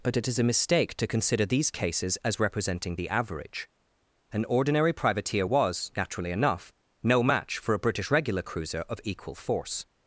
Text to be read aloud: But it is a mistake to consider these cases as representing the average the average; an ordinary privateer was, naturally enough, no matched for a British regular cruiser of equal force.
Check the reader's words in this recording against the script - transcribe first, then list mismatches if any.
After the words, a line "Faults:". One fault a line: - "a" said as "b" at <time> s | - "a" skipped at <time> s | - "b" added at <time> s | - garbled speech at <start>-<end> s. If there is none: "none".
But it is a mistake to consider these cases as representing the average; an ordinary privateer was, naturally enough, no match for a British regular cruiser of equal force.
Faults:
- "the average" skipped at 3.7 s
- "matched" said as "match" at 7.2 s